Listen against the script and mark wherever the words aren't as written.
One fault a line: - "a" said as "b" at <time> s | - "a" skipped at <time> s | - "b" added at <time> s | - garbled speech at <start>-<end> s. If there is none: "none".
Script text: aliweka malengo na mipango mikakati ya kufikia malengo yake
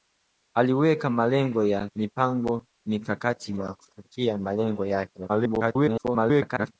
- garbled speech at 5.3-6.7 s